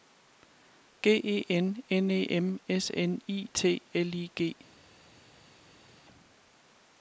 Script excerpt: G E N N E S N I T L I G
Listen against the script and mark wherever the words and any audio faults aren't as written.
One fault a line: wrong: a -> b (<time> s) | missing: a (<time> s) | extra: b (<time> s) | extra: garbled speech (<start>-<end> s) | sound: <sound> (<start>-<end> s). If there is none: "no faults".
extra: M (2.3 s)